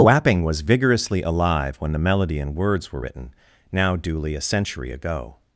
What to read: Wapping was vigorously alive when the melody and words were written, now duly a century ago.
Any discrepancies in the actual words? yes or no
no